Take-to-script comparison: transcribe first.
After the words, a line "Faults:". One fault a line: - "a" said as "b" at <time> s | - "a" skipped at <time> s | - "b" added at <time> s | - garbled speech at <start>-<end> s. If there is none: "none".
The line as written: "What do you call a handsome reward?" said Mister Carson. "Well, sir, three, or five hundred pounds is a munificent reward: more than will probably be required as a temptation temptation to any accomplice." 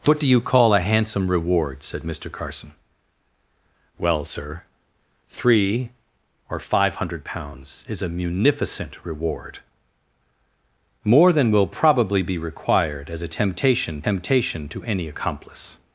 "What do you call a handsome reward?" said Mister Carson. "Well, sir, three, or five hundred pounds is a munificent reward: more than will probably be required as a temptation temptation to any accomplice."
Faults:
none